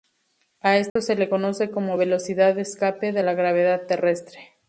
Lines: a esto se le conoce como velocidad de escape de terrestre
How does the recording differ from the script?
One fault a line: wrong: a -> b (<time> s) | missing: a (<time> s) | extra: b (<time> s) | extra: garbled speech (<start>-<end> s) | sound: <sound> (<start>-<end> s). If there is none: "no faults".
sound: dropout (0.9-1.0 s)
extra: la gravedad (3.2 s)